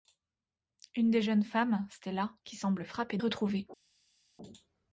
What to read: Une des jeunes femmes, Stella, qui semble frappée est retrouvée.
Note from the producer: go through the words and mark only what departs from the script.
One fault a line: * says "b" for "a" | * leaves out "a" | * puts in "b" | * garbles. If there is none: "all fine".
all fine